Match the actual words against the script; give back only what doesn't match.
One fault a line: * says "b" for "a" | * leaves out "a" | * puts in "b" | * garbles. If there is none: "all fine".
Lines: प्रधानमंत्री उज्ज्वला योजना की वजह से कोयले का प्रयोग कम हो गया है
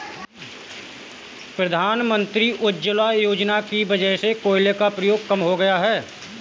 all fine